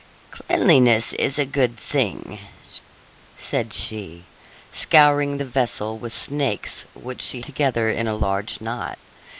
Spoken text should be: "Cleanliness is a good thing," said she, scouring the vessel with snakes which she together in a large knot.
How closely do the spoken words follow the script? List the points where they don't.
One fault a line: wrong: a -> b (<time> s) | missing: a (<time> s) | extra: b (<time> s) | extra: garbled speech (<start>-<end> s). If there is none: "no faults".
no faults